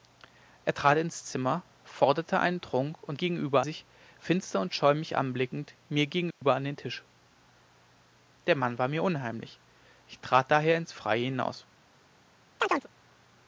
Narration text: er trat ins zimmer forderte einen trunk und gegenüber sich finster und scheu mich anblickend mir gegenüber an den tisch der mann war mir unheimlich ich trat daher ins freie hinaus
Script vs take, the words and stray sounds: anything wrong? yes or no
yes